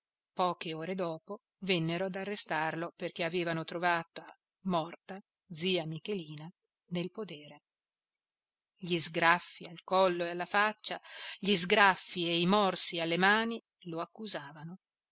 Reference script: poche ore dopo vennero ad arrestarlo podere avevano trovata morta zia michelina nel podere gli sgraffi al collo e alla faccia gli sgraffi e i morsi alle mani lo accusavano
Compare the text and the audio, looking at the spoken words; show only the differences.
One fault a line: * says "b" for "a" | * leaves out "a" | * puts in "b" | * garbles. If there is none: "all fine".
* says "perché" for "podere"